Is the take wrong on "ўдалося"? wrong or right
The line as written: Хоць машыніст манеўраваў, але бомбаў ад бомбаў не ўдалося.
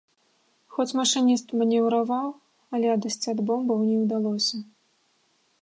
right